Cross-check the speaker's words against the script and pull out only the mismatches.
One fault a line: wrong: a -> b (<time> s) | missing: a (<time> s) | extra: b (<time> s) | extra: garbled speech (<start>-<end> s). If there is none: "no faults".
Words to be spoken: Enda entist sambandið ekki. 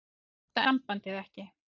missing: entist (0.6 s)